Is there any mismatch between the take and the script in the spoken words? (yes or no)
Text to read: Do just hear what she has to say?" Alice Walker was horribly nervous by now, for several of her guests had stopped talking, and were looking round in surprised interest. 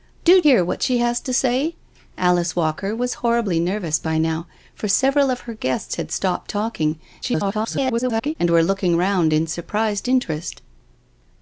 yes